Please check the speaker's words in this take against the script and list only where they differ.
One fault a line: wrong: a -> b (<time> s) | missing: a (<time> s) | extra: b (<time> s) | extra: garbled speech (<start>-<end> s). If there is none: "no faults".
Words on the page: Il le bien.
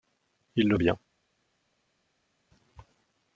no faults